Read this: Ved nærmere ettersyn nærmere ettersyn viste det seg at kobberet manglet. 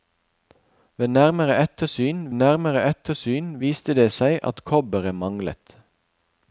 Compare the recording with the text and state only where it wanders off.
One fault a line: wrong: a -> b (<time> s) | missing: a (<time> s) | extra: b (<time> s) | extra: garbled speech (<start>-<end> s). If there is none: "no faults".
no faults